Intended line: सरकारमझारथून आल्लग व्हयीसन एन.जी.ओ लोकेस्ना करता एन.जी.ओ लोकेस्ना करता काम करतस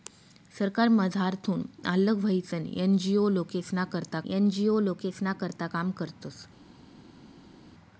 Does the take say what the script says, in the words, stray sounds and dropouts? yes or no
yes